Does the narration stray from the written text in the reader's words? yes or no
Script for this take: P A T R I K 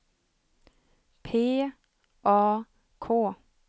yes